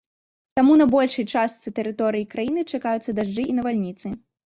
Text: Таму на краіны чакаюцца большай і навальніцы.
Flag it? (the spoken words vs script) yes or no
yes